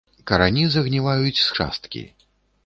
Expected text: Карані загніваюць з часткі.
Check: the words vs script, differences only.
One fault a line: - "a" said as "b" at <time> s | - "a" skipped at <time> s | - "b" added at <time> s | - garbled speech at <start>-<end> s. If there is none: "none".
none